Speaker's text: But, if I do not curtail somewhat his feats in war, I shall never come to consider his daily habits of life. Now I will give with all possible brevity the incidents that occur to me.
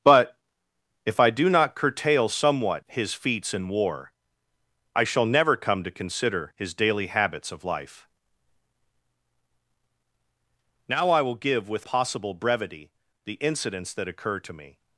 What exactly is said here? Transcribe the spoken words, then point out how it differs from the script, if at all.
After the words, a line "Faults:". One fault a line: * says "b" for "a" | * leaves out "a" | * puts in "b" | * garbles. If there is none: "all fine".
But, if I do not curtail somewhat his feats in war, I shall never come to consider his daily habits of life. Now I will give with possible brevity the incidents that occur to me.
Faults:
* leaves out "all"